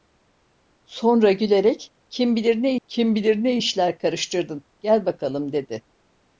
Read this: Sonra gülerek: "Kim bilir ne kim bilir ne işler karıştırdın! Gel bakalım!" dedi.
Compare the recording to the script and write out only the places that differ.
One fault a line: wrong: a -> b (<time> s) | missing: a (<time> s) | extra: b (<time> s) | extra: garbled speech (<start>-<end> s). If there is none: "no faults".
no faults